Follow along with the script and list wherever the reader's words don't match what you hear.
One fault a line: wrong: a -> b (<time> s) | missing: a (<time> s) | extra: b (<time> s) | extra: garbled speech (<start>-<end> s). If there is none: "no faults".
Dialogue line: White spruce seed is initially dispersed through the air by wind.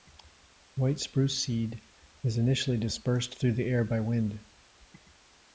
no faults